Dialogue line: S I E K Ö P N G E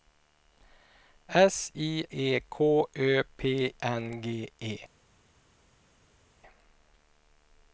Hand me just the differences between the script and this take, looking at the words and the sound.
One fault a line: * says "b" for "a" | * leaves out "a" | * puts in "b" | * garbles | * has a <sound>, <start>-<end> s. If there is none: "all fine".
all fine